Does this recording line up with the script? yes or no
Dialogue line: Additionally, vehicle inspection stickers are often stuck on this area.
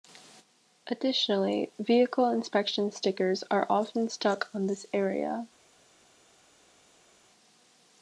yes